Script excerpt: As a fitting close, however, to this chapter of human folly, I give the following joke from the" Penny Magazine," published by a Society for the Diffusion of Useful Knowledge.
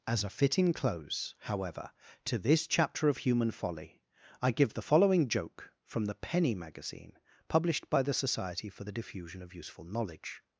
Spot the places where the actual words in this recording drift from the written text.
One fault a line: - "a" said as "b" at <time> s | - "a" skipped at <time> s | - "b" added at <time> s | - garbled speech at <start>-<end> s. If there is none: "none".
- "a" said as "the" at 8.0 s